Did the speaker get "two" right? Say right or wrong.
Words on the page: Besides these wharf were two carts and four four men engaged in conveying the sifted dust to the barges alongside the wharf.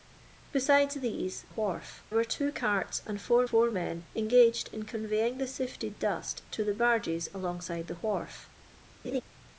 right